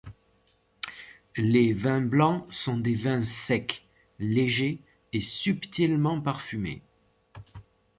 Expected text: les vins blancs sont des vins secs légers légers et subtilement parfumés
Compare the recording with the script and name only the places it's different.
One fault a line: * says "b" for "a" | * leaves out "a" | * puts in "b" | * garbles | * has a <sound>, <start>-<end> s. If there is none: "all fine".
* leaves out "légers"